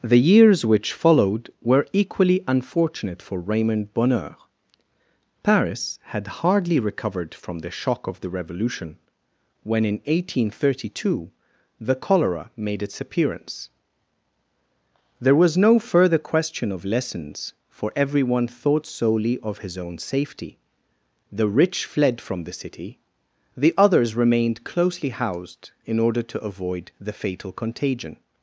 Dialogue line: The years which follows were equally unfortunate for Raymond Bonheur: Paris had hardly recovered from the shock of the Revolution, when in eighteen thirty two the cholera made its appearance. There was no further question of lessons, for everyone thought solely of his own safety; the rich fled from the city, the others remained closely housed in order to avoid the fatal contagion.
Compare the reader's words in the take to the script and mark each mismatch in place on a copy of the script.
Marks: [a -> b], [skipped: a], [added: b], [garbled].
The years which [follows -> followed] were equally unfortunate for Raymond Bonheur: Paris had hardly recovered from the shock of the Revolution, when in eighteen thirty two the cholera made its appearance. There was no further question of lessons, for everyone thought solely of his own safety; the rich fled from the city, the others remained closely housed in order to avoid the fatal contagion.